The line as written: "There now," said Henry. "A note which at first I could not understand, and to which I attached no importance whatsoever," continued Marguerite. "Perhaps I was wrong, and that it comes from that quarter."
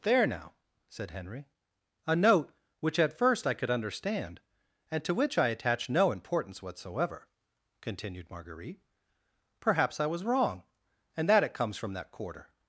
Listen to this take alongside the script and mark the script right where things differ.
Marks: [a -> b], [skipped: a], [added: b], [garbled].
"There now," said Henry. "A note which at first I could [skipped: not] understand, and to which I attached no importance whatsoever," continued Marguerite. "Perhaps I was wrong, and that it comes from that quarter."